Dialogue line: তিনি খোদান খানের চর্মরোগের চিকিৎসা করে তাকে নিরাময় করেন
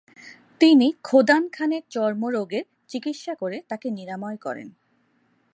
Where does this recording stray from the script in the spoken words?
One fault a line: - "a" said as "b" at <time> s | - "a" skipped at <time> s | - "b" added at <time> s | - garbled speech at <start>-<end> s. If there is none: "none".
none